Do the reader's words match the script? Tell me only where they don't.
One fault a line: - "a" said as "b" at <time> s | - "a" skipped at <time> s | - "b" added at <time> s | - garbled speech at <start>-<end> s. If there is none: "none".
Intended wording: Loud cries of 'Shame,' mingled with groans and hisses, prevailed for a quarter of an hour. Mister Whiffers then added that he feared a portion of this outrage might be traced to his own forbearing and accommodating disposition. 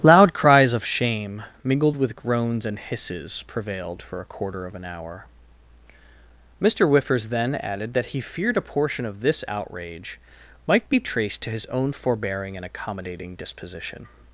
none